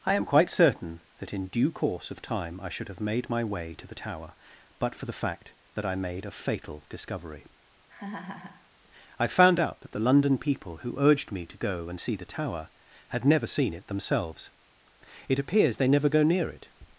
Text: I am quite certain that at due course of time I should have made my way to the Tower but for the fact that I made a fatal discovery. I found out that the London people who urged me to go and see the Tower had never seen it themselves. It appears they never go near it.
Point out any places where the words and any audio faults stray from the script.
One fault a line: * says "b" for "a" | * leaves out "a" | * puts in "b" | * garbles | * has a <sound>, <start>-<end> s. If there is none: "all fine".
* says "in" for "at"
* has a laugh, 7.9-8.7 s